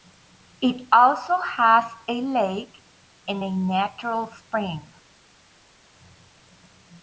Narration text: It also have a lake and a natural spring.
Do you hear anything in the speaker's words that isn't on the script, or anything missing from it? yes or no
yes